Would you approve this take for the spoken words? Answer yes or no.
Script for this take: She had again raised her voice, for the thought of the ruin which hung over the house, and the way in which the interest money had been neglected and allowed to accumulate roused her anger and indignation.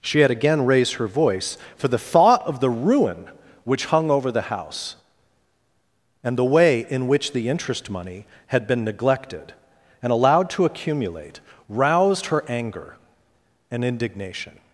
yes